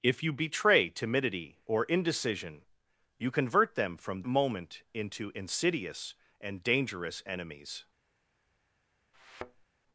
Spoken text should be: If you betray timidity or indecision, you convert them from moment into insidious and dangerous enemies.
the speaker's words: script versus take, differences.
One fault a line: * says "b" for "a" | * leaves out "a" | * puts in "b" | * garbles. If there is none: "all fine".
all fine